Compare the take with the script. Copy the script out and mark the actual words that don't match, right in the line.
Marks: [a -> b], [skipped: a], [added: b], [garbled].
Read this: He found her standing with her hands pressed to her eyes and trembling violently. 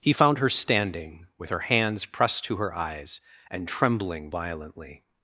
He found her standing with her hands pressed to her eyes and trembling violently.